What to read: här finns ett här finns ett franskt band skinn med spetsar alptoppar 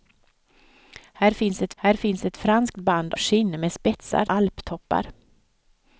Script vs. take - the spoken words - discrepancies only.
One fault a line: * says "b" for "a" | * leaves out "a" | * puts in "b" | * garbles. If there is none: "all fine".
all fine